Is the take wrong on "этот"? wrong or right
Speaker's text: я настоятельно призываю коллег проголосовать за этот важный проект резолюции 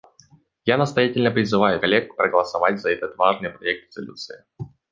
right